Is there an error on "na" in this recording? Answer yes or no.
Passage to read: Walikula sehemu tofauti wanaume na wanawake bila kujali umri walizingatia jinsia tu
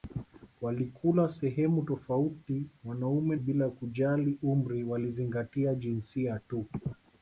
yes